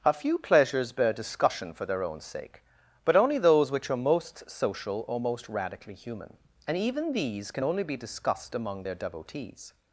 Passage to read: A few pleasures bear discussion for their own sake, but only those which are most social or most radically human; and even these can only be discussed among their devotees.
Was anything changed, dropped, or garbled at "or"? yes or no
no